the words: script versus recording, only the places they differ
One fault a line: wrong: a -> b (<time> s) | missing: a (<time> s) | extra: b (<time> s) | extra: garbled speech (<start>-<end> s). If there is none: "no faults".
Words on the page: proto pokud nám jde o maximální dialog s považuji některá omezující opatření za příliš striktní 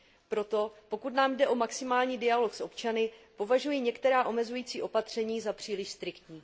extra: občany (2.6 s)